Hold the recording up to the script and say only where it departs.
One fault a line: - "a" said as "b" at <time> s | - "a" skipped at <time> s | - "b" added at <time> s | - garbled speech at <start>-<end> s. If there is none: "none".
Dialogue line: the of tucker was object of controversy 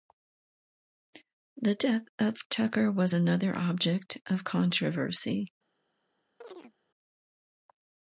- "death" added at 1.7 s
- "another" added at 3.1 s